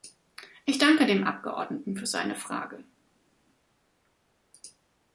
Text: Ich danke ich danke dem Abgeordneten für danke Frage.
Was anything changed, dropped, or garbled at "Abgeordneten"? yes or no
no